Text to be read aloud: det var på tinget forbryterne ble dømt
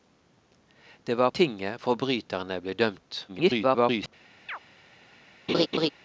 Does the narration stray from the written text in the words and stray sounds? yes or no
yes